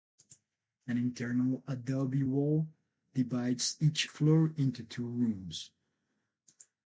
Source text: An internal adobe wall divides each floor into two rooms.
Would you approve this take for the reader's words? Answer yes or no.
yes